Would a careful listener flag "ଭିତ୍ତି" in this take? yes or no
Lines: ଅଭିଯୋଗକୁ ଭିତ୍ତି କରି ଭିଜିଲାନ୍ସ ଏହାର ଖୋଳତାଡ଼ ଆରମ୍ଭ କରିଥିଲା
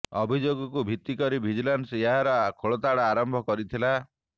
no